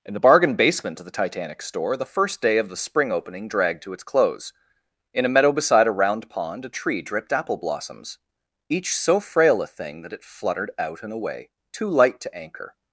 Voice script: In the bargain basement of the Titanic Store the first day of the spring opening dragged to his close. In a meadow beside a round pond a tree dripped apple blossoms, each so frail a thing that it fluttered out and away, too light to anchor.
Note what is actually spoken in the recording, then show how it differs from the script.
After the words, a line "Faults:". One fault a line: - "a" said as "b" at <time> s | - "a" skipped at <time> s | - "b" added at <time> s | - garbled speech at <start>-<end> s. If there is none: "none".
In the bargain basement of the Titanic Store the first day of the spring opening dragged to its close. In a meadow beside a round pond a tree dripped apple blossoms, each so frail a thing that it fluttered out and away, too light to anchor.
Faults:
- "his" said as "its" at 3.9 s